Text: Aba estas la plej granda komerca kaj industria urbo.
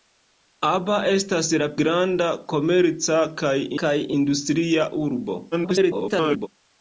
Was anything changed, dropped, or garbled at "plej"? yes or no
yes